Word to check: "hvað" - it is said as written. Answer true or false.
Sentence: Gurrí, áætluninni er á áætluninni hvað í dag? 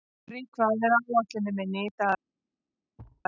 false